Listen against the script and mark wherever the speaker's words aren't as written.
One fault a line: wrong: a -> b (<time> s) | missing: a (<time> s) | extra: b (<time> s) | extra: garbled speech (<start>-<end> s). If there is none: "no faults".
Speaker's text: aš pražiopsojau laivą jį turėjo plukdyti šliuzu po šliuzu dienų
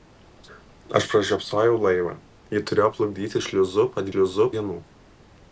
no faults